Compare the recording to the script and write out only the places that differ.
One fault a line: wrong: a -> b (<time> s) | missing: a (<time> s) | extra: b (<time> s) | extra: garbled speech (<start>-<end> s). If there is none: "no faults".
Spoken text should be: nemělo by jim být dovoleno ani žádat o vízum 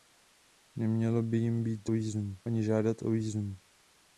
wrong: dovoleno -> vízum (1.9 s)